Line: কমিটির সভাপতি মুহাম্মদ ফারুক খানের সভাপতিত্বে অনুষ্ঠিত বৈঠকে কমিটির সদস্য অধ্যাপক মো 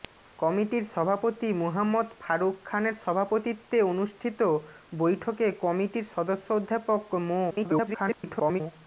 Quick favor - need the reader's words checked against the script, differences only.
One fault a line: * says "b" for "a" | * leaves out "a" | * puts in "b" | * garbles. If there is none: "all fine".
* garbles